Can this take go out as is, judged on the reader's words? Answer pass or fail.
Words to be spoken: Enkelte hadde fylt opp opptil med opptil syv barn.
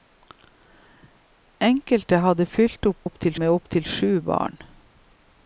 pass